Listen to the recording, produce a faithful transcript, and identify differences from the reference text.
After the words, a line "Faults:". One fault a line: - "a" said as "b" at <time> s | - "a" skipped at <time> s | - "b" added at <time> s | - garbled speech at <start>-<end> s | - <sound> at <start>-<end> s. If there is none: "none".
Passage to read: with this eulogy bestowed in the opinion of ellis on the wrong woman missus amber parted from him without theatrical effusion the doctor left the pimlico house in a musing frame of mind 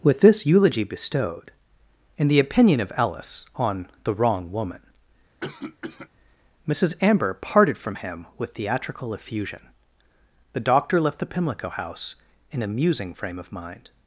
with this eulogy bestowed in the opinion of ellis on the wrong woman missus amber parted from him with theatrical effusion the doctor left the pimlico house in a musing frame of mind
Faults:
- cough at 5.4-6.1 s
- "without" said as "with" at 8.4 s